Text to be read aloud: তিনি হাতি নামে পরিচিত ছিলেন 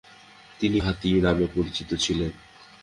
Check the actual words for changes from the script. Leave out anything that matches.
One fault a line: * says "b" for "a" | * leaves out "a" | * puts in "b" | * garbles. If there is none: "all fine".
all fine